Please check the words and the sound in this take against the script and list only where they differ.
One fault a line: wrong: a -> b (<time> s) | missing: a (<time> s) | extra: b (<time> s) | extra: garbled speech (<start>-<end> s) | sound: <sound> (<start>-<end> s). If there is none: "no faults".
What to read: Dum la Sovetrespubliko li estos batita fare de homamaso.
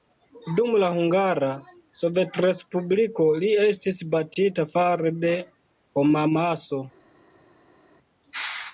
extra: Hungara (0.9 s)
wrong: estos -> estis (3.7 s)